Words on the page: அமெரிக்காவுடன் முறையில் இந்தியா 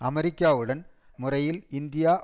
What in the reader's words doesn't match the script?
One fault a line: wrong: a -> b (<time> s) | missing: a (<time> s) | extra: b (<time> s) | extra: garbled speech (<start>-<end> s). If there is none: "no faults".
no faults